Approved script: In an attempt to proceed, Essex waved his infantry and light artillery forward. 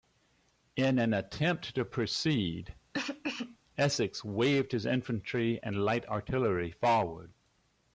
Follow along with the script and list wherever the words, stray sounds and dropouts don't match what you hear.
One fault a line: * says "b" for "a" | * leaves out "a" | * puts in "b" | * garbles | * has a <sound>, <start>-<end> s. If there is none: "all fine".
* has a cough, 2.9-3.6 s